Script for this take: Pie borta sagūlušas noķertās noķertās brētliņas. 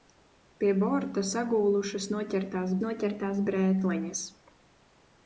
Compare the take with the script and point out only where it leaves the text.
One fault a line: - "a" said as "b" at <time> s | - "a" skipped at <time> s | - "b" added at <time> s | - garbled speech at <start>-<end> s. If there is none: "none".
none